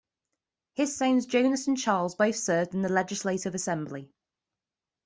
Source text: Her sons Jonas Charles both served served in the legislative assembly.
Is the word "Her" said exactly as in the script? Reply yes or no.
no